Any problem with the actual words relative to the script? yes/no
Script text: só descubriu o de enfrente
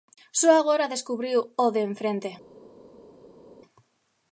yes